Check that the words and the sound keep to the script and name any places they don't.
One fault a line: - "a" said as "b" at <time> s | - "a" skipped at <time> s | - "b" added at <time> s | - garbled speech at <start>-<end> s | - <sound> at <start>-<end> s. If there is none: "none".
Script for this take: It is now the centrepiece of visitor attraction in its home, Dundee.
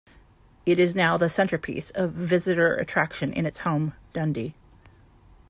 none